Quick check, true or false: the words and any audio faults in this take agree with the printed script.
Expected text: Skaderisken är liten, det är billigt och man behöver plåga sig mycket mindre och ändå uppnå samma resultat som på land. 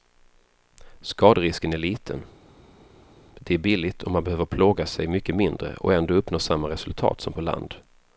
true